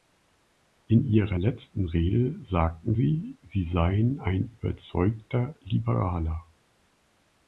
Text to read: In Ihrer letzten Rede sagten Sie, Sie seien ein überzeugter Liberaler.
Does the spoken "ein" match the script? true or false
true